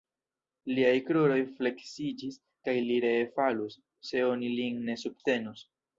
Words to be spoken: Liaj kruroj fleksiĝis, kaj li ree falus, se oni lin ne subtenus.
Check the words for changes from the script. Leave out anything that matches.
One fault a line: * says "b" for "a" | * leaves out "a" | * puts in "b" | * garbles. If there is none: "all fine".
all fine